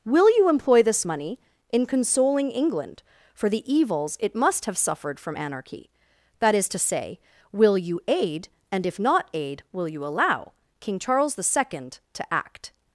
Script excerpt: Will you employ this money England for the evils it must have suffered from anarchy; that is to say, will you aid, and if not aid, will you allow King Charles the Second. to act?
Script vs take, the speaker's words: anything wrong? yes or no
yes